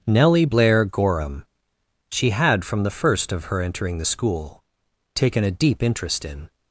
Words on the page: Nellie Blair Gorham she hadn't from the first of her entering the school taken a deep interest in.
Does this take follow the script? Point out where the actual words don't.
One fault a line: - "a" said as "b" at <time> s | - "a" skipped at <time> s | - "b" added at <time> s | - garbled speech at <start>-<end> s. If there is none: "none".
- "hadn't" said as "had" at 2.3 s